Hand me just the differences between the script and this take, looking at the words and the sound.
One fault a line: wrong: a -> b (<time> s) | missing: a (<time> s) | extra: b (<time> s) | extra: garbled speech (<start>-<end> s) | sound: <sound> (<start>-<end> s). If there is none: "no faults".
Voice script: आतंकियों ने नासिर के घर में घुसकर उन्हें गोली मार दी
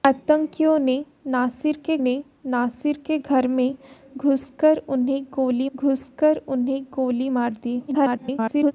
extra: ने नासिर के (2.0 s)
extra: घुसकर उन्हें गोली (5.8 s)
extra: garbled speech (7.9-8.7 s)